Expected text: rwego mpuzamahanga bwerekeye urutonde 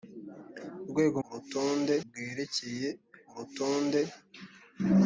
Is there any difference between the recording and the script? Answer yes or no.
yes